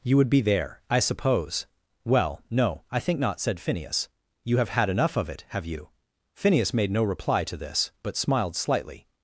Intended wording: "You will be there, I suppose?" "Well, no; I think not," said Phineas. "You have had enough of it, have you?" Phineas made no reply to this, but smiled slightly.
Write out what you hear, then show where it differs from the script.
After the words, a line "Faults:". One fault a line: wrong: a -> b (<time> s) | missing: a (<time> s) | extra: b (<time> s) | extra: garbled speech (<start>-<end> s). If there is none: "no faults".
"You would be there, I suppose?" "Well, no; I think not," said Phineas. "You have had enough of it, have you?" Phineas made no reply to this, but smiled slightly.
Faults:
wrong: will -> would (0.2 s)